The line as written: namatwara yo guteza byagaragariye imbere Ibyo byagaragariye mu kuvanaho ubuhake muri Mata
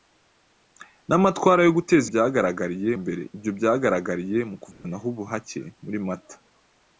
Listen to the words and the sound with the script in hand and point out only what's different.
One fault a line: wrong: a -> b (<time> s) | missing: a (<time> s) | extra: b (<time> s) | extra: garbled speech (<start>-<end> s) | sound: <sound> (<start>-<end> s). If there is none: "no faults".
sound: dropout (4.7-4.8 s)